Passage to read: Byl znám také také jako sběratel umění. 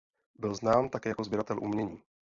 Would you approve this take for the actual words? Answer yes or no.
no